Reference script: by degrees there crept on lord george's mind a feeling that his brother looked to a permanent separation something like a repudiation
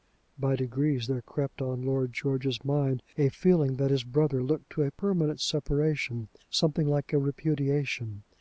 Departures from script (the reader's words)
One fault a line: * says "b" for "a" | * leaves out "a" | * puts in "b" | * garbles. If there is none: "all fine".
all fine